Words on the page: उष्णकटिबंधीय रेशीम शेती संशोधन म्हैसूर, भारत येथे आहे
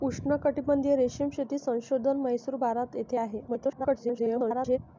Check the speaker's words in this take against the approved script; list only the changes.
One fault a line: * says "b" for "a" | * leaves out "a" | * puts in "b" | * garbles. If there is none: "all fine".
* garbles